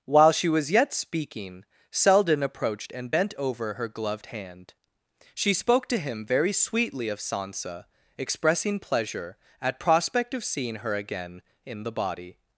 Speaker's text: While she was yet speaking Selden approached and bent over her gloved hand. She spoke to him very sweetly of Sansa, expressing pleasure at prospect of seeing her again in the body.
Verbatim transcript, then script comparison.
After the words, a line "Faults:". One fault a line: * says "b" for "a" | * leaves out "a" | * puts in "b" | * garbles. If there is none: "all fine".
While she was yet speaking Selden approached and bent over her gloved hand. She spoke to him very sweetly of Sansa, expressing pleasure at prospect of seeing her again in the body.
Faults:
all fine